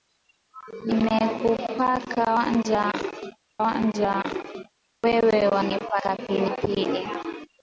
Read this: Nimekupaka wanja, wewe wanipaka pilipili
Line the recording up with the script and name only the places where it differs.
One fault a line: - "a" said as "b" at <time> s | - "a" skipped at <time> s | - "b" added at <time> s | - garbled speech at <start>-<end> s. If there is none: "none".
- "wanja" added at 3.6 s